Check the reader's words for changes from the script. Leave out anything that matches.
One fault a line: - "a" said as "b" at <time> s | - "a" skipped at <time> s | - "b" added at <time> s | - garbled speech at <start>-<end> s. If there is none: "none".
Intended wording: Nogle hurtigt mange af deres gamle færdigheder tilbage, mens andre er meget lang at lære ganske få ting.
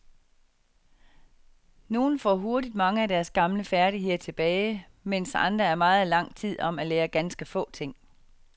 - "får" added at 2.2 s
- "tid om" added at 6.3 s